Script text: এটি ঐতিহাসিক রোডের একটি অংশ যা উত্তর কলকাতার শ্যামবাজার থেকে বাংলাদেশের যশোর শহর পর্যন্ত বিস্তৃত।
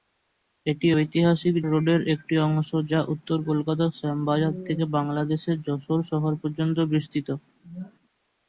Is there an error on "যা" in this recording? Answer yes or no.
no